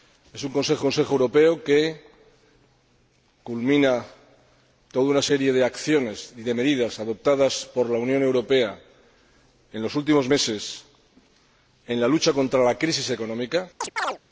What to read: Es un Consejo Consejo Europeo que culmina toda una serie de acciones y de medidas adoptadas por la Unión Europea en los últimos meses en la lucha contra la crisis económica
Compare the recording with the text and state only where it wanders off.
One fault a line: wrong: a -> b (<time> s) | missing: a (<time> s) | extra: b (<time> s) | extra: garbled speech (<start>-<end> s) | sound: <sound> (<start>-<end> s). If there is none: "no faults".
sound: chirp (13.8-14.2 s)